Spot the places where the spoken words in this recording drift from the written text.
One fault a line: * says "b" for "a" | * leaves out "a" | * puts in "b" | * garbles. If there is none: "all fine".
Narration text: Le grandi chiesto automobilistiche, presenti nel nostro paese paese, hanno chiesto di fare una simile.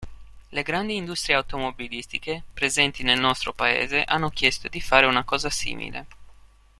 * says "industrie" for "chiesto"
* leaves out "paese"
* puts in "cosa"